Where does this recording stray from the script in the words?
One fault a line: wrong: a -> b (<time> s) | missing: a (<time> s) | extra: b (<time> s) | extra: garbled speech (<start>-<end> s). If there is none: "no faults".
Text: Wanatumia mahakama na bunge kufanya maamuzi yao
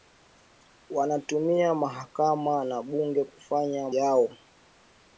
missing: maamuzi (3.9 s)